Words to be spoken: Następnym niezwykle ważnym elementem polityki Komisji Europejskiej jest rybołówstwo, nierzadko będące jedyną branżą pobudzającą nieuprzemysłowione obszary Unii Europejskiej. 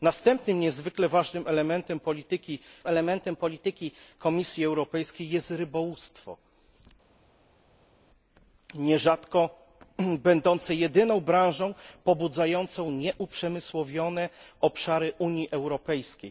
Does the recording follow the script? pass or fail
fail